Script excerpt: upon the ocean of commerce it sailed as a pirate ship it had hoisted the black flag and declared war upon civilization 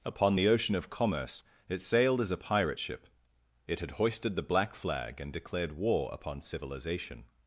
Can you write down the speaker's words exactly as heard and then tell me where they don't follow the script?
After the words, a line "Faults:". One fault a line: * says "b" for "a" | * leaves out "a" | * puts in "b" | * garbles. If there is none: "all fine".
upon the ocean of commerce it sailed as a pirate ship it had hoisted the black flag and declared war upon civilization
Faults:
all fine